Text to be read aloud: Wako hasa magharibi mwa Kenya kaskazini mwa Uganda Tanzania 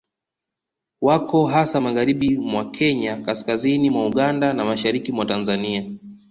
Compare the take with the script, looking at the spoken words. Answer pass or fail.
fail